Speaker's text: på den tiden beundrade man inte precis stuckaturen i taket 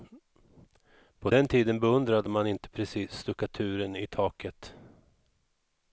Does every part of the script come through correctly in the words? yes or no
yes